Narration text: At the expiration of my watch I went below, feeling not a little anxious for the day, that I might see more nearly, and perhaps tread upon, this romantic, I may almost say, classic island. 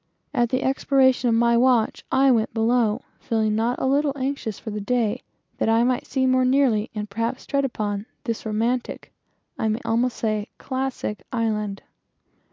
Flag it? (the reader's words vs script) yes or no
no